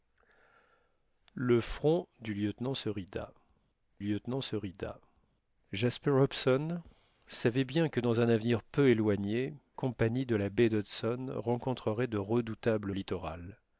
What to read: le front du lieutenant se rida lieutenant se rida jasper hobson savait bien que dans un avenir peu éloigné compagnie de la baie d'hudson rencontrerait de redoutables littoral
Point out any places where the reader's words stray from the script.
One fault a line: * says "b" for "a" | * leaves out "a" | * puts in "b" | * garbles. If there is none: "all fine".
all fine